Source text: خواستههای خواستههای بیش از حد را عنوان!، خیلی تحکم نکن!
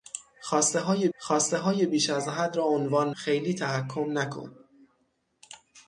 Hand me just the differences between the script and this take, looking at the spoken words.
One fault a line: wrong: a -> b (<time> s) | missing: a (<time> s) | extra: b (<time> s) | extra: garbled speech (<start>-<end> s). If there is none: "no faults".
no faults